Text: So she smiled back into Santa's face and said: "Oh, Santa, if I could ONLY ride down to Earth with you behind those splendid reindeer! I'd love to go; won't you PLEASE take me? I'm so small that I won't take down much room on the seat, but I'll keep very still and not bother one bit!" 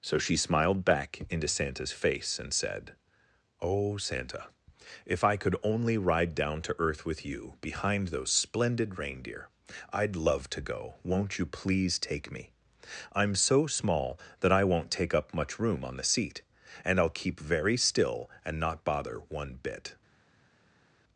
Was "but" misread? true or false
true